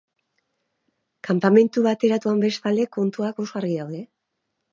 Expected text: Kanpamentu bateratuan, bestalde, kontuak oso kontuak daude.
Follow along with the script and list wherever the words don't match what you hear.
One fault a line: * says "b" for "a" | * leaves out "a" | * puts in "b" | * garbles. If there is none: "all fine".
* says "argi" for "kontuak"